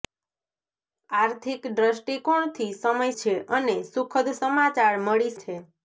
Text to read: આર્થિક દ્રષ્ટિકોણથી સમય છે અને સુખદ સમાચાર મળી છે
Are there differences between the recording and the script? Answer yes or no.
no